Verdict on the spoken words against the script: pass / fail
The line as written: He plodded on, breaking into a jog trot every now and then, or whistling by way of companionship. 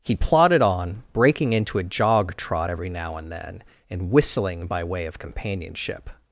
fail